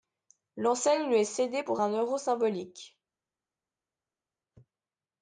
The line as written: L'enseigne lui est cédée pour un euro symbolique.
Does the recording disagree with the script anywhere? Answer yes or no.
no